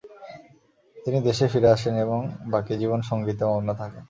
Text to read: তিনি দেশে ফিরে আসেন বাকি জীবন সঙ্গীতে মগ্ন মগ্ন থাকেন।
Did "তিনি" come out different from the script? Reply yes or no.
no